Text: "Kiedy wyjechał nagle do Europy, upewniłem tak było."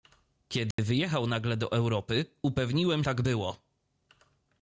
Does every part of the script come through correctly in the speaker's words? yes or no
yes